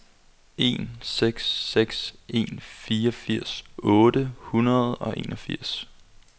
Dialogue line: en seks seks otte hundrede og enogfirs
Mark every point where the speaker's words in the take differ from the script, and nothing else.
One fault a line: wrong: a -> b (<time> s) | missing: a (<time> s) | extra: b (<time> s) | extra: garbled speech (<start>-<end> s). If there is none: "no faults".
extra: en fireogfirs (2.3 s)